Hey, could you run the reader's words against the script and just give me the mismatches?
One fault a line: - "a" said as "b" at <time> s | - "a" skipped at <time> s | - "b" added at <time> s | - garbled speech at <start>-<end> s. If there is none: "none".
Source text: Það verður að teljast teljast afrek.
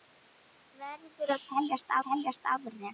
none